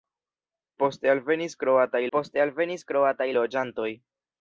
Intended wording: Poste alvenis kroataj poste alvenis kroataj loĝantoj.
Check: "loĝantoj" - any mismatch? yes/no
no